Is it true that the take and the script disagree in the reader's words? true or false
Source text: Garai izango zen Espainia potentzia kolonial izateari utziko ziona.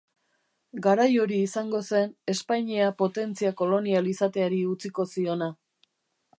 true